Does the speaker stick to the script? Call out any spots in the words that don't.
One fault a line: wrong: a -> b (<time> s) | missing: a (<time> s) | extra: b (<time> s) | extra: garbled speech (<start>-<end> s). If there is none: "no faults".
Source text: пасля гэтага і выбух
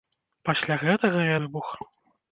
no faults